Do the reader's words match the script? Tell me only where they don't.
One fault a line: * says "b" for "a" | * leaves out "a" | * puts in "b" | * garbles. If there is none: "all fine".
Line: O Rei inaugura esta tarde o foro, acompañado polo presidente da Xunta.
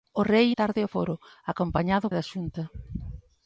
* leaves out "inaugura esta"
* leaves out "polo presidente"